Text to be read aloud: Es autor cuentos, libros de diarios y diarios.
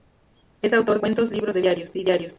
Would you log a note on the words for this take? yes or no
no